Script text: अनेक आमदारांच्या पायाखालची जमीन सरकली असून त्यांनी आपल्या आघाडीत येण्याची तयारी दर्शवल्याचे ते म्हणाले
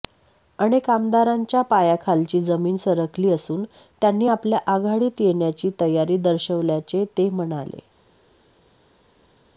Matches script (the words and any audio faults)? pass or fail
pass